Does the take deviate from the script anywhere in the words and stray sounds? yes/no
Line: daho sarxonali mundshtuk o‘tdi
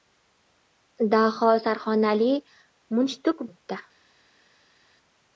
no